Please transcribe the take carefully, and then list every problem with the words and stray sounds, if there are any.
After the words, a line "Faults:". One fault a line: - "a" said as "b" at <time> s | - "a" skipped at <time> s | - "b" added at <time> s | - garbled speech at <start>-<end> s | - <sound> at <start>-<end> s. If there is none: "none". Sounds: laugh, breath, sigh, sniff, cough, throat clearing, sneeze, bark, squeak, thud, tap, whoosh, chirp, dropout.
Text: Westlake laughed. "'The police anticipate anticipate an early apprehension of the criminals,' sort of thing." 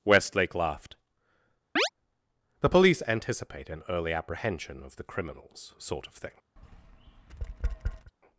Westlake laughed. "'The police anticipate an early apprehension of the criminals,' sort of thing."
Faults:
- chirp at 1.8-1.9 s
- "anticipate" skipped at 3.7 s
- tap at 6.6-8.1 s